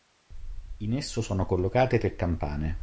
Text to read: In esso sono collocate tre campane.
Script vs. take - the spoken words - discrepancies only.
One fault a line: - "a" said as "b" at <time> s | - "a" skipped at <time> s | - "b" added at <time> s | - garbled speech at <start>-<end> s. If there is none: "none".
none